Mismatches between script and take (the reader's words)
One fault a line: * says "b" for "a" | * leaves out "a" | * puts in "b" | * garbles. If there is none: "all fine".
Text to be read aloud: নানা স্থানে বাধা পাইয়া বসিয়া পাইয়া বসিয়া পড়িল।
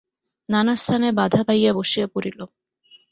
* leaves out "পাইয়া বসিয়া"